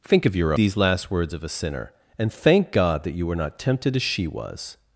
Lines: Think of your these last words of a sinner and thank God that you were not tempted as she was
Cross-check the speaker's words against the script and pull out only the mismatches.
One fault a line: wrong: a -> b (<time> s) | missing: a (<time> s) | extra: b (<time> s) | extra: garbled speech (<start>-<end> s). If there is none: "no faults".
no faults